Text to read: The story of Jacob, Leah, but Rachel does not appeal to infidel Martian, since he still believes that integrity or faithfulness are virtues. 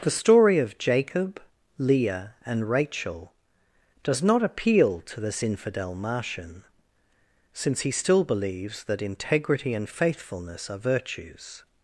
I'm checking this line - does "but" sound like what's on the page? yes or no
no